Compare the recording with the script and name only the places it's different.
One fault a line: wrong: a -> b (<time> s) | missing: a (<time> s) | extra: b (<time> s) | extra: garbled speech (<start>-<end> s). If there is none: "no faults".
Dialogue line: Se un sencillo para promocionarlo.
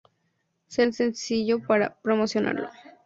no faults